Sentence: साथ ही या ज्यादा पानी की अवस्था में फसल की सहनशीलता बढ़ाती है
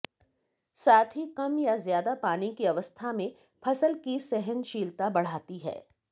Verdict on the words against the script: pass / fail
fail